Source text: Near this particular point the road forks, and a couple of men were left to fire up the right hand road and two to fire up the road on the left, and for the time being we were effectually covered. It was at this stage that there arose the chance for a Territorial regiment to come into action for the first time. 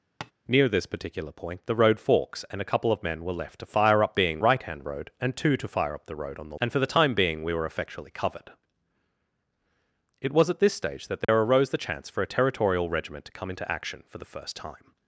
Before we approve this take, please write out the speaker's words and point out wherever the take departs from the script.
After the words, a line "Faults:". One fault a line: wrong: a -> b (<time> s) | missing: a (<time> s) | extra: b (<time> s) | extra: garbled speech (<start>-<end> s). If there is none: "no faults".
Near this particular point the road forks, and a couple of men were left to fire up being right hand road and two to fire up the road on the and for the time being we were effectually covered. It was at this stage that there arose the chance for a Territorial regiment to come into action for the first time.
Faults:
wrong: the -> being (4.1 s)
missing: left (6.6 s)